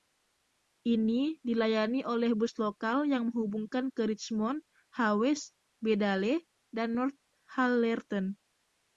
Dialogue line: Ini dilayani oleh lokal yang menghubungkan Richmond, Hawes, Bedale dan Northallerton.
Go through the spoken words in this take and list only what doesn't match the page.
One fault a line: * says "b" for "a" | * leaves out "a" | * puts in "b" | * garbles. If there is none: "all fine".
* puts in "bus"
* puts in "ke"